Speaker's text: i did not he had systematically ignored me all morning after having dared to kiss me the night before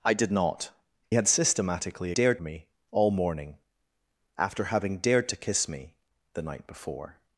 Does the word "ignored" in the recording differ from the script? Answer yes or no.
yes